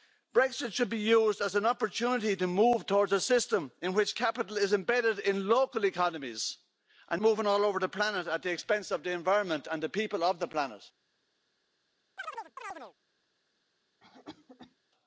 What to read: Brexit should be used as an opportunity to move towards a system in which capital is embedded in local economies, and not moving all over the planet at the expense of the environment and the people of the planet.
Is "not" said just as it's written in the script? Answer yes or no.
no